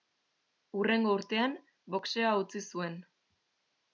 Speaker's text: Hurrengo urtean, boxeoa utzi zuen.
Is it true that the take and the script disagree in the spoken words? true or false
false